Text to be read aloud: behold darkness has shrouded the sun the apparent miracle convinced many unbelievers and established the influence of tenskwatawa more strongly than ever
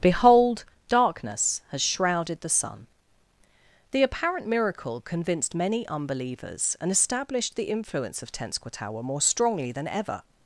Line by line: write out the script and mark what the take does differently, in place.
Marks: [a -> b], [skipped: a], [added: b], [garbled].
behold darkness has shrouded the sun the apparent miracle convinced many unbelievers and established the influence of tenskwatawa more strongly than ever